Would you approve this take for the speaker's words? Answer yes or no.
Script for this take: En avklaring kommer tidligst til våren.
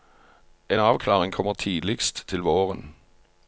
yes